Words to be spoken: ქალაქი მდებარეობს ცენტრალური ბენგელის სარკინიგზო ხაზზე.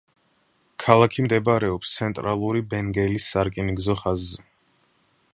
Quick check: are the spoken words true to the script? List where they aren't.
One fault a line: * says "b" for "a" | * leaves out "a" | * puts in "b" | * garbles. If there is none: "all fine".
all fine